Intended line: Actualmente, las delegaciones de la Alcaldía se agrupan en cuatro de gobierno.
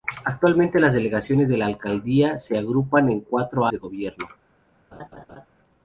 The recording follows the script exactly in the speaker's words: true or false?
true